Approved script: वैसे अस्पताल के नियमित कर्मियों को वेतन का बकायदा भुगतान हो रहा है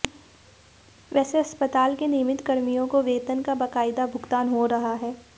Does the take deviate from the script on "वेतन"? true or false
false